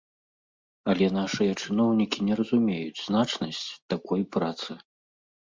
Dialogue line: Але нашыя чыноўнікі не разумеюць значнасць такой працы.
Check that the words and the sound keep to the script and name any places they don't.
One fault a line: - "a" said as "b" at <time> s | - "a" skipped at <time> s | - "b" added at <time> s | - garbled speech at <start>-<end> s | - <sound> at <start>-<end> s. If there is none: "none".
none